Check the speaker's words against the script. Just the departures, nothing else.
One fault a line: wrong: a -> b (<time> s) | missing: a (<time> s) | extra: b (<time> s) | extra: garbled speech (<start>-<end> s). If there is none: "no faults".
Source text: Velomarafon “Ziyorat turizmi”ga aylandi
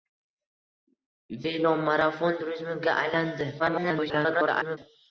missing: Ziyorat (2.4 s)
extra: garbled speech (3.6-4.8 s)